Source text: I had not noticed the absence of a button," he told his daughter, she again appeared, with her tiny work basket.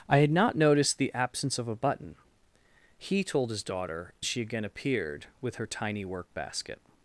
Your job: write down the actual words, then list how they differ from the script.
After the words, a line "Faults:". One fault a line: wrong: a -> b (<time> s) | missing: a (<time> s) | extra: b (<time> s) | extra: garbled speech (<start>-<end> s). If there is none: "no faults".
I had not noticed the absence of a button," he told his daughter, she again appeared, with her tiny work basket.
Faults:
no faults